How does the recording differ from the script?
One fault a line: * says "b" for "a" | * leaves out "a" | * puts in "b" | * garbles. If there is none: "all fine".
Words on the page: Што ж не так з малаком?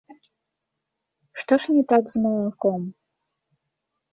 all fine